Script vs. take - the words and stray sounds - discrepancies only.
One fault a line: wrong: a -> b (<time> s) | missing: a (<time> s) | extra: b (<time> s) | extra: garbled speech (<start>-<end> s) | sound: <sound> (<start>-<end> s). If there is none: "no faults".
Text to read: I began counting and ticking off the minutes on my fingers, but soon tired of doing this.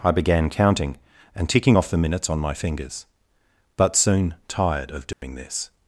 sound: dropout (5.1-5.2 s)